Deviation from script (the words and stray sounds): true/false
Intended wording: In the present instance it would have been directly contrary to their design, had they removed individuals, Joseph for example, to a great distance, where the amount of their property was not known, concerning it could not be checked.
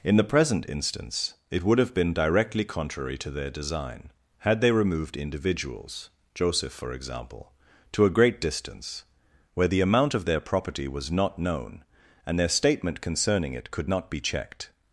true